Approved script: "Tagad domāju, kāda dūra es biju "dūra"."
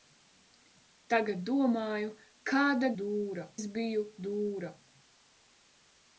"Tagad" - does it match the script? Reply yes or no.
yes